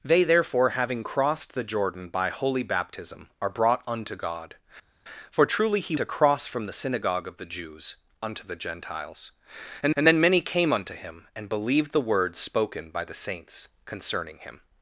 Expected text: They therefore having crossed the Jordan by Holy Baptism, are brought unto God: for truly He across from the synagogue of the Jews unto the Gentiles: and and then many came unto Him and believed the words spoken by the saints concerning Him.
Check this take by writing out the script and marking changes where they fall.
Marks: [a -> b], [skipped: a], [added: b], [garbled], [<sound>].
They therefore having crossed the Jordan by Holy Baptism, are brought unto God: for truly He across from the synagogue of the Jews unto the Gentiles: and and then many came unto Him and believed the words spoken by the saints concerning Him.